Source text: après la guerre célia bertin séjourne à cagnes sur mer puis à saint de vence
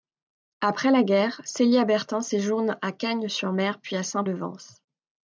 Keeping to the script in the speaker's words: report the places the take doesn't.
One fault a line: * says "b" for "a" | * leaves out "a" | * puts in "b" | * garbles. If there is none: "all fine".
all fine